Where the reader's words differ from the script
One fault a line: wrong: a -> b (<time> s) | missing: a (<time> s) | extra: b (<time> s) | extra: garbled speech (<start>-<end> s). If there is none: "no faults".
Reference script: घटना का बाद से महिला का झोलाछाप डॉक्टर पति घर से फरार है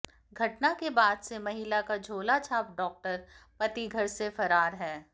wrong: का -> के (0.7 s)